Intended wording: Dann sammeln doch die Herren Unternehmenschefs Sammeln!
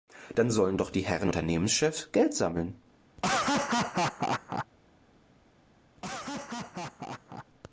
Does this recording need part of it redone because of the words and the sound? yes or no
yes